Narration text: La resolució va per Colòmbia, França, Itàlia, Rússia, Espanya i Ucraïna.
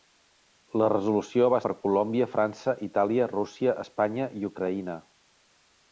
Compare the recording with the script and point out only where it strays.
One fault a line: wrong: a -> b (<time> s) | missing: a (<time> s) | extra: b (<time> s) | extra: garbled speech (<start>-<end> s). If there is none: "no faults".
no faults